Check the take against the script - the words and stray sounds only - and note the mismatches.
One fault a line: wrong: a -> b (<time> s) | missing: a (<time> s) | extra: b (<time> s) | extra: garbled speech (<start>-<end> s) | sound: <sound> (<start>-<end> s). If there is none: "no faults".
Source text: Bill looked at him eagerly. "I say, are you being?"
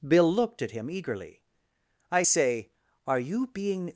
no faults